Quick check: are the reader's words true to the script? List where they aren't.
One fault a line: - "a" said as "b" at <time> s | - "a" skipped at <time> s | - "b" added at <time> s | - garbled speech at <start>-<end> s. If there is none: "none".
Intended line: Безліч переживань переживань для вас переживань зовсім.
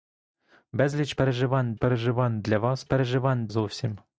none